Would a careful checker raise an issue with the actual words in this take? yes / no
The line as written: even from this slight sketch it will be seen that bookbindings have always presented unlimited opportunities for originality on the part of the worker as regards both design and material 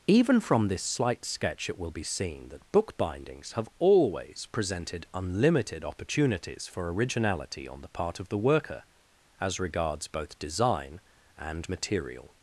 no